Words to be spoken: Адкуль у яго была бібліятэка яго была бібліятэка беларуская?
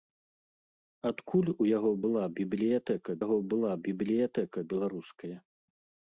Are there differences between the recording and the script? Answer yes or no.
no